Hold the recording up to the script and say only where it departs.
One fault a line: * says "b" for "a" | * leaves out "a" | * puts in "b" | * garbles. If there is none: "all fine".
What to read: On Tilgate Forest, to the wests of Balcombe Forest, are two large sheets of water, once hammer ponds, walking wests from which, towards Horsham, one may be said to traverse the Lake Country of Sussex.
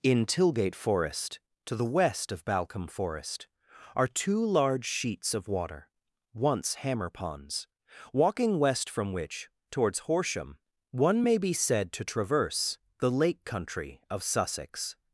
* says "In" for "On"
* says "west" for "wests"
* says "west" for "wests"